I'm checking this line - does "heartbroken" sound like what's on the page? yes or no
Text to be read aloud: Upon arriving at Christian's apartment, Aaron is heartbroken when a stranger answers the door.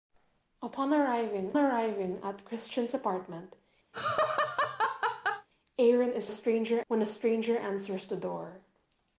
no